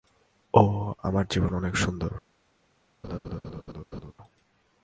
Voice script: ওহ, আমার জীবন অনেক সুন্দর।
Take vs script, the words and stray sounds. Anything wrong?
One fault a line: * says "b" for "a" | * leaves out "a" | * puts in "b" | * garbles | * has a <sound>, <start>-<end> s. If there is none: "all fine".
* has a laugh, 3.0-4.1 s